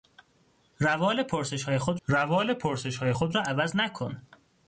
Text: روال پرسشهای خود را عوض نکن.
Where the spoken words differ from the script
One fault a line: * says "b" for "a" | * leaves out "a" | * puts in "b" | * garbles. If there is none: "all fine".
* puts in "روال پرسشهای خود"